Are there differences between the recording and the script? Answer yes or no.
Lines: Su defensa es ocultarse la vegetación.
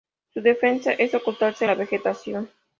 no